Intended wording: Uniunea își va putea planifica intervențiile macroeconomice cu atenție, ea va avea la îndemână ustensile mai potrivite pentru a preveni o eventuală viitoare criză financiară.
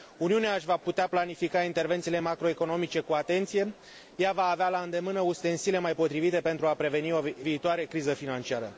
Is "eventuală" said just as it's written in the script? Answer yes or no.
no